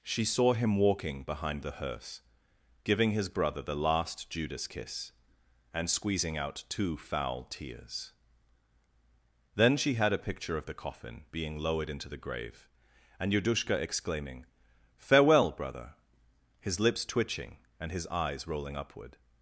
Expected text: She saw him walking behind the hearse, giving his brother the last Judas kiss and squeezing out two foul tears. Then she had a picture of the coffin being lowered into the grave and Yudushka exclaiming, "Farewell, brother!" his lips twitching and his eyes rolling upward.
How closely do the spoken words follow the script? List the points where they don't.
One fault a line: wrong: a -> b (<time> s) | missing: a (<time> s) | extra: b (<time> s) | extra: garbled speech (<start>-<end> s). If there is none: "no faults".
no faults